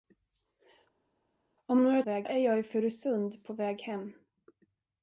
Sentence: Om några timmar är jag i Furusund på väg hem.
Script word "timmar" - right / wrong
wrong